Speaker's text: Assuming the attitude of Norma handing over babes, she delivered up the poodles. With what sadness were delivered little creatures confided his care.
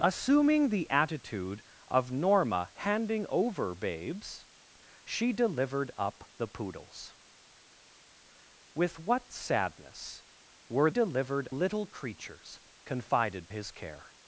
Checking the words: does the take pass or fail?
pass